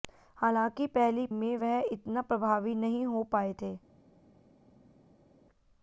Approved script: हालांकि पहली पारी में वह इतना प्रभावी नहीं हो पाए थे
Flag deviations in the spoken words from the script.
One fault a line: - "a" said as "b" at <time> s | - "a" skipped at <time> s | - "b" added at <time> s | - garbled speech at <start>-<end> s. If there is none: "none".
- "पारी" skipped at 1.2 s